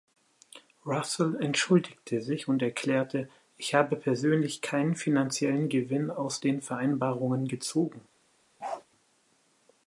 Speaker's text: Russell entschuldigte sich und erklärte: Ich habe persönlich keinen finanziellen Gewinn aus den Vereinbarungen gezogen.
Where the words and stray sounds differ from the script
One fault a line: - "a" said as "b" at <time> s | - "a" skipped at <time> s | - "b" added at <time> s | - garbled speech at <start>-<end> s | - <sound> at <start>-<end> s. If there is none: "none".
- bark at 8.6-8.8 s